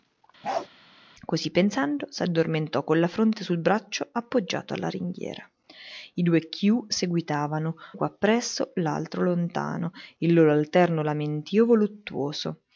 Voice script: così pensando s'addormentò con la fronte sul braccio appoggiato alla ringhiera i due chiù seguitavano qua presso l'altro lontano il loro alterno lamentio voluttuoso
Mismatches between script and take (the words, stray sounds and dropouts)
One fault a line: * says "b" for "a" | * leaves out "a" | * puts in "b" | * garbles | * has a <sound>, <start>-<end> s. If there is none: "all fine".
* has a bark, 0.4-0.7 s